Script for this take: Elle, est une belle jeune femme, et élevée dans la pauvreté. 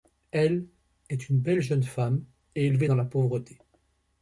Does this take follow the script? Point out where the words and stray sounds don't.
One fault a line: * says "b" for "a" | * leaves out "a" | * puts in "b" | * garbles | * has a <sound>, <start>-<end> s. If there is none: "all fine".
all fine